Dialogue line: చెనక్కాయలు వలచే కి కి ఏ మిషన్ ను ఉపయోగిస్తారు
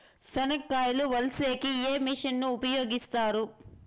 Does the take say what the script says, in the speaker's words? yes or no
no